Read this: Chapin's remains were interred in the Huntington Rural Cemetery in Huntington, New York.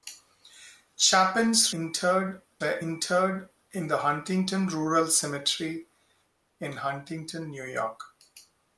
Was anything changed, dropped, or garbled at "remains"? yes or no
yes